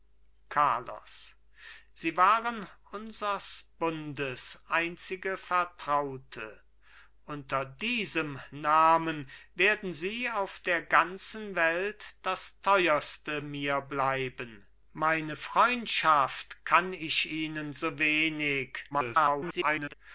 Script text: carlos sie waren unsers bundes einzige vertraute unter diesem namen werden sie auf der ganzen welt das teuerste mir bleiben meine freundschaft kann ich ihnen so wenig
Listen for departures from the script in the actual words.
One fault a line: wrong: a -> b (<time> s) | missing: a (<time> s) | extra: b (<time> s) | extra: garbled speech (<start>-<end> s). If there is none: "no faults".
extra: garbled speech (18.9-19.9 s)